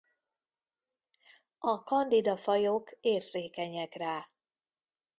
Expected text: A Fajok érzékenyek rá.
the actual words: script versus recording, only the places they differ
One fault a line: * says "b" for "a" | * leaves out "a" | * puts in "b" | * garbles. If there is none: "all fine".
* puts in "Candida"